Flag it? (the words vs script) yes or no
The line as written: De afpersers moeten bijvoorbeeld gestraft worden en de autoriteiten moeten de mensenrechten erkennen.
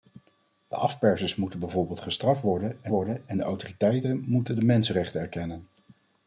yes